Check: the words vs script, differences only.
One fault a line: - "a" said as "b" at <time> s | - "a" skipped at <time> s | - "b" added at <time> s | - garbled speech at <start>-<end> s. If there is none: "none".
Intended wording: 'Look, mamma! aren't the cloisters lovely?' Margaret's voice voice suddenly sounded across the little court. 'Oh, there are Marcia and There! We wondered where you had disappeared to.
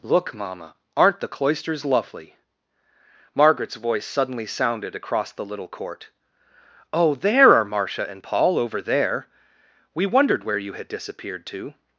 - "voice" skipped at 4.0 s
- "Paul over" added at 8.2 s